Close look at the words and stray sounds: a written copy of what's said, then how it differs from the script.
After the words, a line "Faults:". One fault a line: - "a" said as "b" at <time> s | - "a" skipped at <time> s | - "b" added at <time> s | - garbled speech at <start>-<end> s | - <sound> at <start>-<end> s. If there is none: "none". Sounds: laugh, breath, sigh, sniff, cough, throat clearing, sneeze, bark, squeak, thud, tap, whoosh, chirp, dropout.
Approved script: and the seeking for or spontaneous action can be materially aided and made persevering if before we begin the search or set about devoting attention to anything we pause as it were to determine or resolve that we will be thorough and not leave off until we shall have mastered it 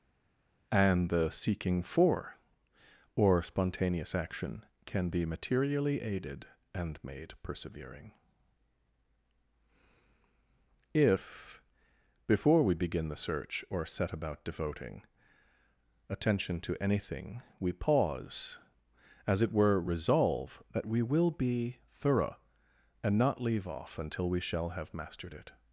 and the seeking for or spontaneous action can be materially aided and made persevering if before we begin the search or set about devoting attention to anything we pause as it were resolve that we will be thorough and not leave off until we shall have mastered it
Faults:
- "to determine or" skipped at 19.8 s